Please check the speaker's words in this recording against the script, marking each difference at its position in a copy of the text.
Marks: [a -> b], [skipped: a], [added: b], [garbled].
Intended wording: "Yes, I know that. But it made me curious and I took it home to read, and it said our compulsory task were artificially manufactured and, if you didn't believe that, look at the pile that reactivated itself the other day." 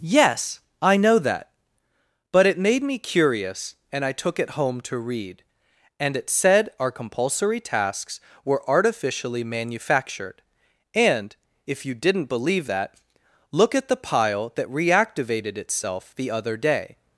"Yes, I know that. But it made me curious and I took it home to read, and it said our compulsory [task -> tasks] were artificially manufactured and, if you didn't believe that, look at the pile that reactivated itself the other day."